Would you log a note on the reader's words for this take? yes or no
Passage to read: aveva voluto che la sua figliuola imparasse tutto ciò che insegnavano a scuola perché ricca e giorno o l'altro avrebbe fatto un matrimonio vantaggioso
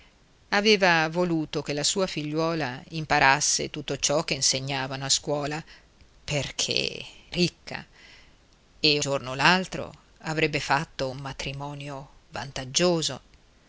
no